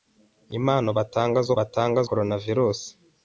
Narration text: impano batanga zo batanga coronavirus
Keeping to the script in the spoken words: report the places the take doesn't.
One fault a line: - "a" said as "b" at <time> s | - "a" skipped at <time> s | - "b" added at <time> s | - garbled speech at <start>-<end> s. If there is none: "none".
none